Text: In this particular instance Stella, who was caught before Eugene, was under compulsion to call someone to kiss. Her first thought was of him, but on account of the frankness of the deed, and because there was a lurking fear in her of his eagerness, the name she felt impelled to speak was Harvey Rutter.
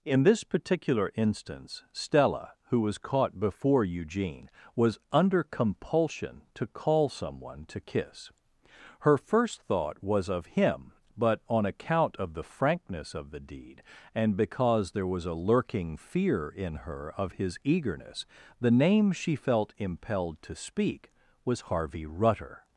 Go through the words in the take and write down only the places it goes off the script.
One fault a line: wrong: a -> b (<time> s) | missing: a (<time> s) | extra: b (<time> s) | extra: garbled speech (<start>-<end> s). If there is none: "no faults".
no faults